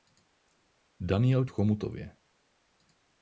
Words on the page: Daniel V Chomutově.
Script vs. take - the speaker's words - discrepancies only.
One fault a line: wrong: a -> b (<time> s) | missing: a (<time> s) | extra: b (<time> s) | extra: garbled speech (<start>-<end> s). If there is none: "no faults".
no faults